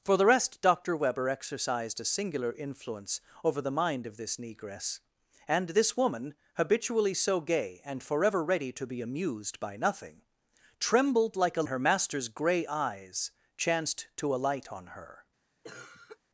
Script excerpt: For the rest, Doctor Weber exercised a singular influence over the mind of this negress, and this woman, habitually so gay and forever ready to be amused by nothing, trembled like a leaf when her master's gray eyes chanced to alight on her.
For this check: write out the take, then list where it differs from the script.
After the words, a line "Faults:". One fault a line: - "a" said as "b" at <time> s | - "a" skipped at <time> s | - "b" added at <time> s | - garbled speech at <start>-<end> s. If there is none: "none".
For the rest, Doctor Weber exercised a singular influence over the mind of this negress, and this woman, habitually so gay and forever ready to be amused by nothing, trembled like a her master's gray eyes chanced to alight on her.
Faults:
- "leaf when" skipped at 11.6 s